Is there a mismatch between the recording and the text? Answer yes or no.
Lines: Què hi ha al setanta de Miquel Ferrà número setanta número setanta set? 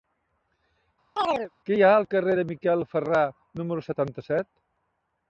yes